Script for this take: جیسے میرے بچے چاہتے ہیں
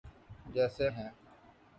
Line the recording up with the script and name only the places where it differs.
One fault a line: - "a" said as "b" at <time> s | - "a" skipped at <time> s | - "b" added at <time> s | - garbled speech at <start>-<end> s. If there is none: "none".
- "میرے بچے چاہتے" skipped at 0.8 s